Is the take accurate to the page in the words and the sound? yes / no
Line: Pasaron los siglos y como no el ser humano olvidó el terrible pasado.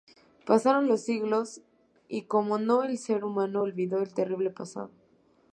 yes